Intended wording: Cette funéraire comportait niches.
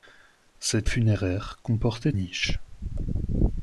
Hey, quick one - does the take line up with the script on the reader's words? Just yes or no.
yes